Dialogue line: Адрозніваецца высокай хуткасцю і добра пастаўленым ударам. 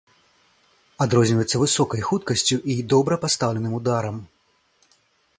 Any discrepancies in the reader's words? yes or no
no